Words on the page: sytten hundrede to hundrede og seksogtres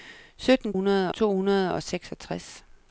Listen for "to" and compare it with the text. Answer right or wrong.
right